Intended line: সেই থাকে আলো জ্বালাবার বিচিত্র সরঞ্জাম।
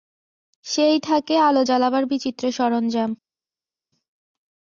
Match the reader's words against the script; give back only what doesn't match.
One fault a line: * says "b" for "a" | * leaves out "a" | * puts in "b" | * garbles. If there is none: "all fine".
all fine